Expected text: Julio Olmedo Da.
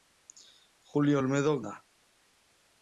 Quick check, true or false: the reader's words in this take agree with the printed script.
true